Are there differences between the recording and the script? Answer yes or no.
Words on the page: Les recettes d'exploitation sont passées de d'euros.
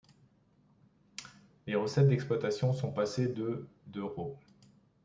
no